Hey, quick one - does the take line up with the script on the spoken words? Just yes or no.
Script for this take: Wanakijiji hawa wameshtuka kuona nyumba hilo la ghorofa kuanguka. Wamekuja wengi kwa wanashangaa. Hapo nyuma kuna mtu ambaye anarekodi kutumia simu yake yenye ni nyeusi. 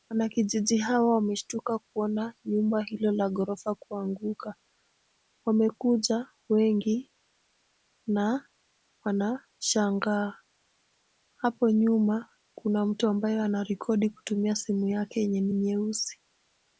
no